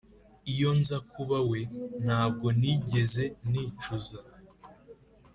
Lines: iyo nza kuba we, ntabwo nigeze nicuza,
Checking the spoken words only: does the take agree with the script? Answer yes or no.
yes